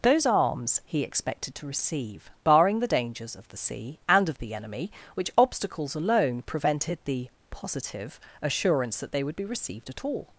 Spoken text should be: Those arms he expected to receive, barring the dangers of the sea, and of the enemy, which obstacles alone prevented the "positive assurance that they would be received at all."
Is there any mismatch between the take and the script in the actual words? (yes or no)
no